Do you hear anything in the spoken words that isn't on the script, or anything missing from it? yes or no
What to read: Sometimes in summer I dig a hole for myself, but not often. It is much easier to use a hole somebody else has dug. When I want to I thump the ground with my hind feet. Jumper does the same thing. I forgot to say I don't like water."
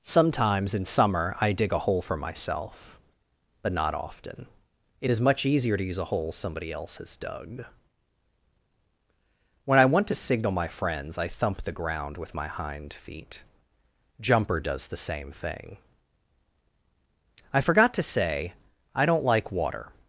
yes